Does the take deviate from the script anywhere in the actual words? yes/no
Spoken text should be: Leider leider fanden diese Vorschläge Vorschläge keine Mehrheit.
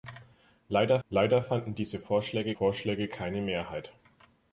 no